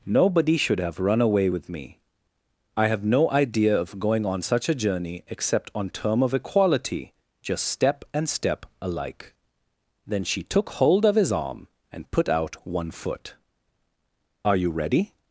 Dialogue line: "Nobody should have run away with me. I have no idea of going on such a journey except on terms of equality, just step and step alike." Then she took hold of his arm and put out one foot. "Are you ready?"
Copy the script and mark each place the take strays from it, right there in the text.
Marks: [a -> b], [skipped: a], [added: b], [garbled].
"Nobody should have run away with me. I have no idea of going on such a journey except on [terms -> term] of equality, just step and step alike." Then she took hold of his arm and put out one foot. "Are you ready?"